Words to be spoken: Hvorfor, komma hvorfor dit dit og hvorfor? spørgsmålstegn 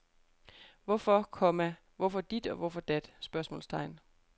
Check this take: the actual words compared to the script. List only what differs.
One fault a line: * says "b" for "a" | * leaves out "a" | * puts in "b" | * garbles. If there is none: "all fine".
* leaves out "dit"
* puts in "dat"